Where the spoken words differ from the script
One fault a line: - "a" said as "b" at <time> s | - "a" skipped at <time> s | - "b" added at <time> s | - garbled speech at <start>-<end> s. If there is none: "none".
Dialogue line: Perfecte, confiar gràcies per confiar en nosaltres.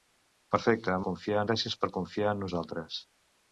none